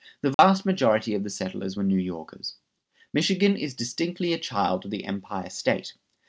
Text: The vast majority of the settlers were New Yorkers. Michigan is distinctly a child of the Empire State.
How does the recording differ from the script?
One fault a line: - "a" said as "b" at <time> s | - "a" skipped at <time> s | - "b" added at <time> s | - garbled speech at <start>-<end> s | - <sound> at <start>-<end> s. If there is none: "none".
- dropout at 0.3-0.4 s